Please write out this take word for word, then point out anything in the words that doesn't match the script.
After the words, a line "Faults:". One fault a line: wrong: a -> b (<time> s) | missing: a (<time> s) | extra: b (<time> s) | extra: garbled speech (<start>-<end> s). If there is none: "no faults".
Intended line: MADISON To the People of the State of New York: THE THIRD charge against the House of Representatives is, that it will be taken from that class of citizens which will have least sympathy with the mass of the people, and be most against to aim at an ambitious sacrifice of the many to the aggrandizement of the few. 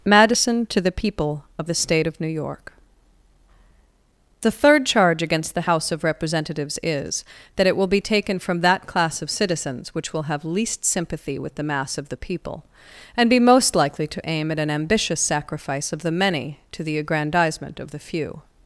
MADISON To the People of the State of New York: THE THIRD charge against the House of Representatives is, that it will be taken from that class of citizens which will have least sympathy with the mass of the people, and be most likely to aim at an ambitious sacrifice of the many to the aggrandizement of the few.
Faults:
wrong: against -> likely (13.7 s)